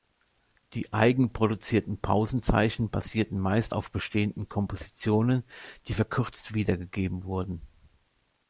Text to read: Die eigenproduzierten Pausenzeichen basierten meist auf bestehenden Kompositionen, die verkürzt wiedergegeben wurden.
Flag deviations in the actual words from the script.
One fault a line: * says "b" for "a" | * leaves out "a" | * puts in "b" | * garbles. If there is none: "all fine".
all fine